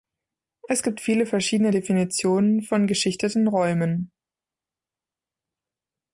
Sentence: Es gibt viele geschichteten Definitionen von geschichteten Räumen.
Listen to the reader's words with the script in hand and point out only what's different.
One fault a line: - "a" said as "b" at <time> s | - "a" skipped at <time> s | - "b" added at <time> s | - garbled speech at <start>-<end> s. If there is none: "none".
- "geschichteten" said as "verschiedene" at 1.3 s